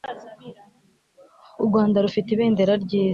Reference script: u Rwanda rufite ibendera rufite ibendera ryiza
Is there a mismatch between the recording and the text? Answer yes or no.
yes